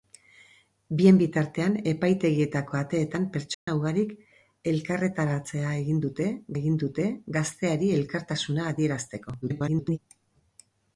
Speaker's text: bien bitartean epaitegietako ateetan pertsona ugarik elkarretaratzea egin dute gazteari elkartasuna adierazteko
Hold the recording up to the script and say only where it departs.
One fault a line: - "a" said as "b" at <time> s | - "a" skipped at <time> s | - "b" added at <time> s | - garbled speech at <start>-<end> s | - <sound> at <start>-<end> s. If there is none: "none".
- dropout at 3.5-3.7 s
- "egin dute" added at 6.6 s
- garbled speech at 9.4-10.0 s